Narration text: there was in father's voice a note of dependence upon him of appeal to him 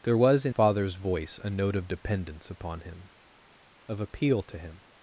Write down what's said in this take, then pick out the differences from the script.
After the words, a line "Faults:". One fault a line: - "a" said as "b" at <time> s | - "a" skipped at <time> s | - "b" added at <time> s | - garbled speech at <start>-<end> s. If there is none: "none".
there was in father's voice a note of dependence upon him of appeal to him
Faults:
none